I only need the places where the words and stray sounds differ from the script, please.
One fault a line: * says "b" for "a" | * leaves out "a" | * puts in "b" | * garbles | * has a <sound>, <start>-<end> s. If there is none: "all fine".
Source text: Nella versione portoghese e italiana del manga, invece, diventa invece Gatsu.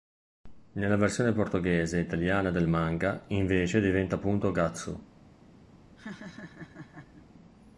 * says "appunto" for "invece"
* has a laugh, 6.0-7.3 s